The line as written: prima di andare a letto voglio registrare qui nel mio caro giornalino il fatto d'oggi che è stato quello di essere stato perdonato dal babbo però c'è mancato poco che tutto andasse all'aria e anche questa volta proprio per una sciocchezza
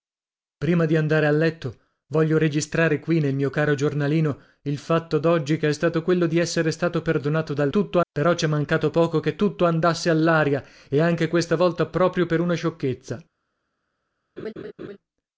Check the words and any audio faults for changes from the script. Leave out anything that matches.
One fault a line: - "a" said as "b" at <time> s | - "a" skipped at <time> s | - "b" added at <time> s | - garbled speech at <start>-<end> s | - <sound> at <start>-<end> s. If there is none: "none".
- "babbo" said as "tutto" at 7.7 s
- laugh at 14.4-15.0 s